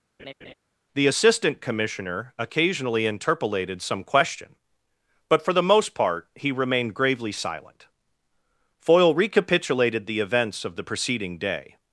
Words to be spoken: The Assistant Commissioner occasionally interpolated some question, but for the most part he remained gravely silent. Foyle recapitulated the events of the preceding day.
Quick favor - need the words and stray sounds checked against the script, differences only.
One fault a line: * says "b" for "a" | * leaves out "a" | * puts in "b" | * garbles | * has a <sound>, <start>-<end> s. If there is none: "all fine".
* has a laugh, 0.2-0.5 s